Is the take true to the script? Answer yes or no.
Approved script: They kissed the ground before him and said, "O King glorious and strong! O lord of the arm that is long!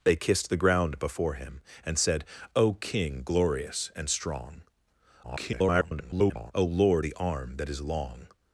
no